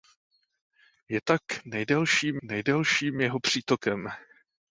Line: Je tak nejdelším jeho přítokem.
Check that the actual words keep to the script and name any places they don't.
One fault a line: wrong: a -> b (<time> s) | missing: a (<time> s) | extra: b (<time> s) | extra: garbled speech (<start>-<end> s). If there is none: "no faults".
extra: nejdelším (2.4 s)